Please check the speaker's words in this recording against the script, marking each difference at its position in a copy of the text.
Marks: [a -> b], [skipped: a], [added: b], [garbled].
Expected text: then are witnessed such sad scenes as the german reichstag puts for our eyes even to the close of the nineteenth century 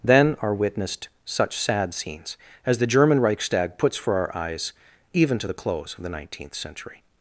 then are witnessed such sad scenes as the german reichstag puts for our eyes even to the close of the nineteenth century